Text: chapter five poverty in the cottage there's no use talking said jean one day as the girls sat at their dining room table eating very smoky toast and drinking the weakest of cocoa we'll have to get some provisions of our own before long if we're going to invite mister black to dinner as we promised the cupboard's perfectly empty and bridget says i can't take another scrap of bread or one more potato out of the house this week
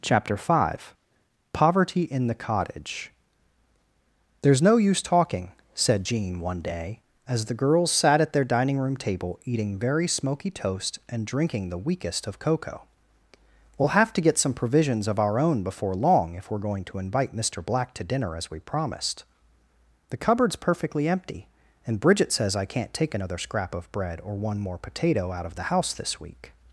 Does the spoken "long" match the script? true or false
true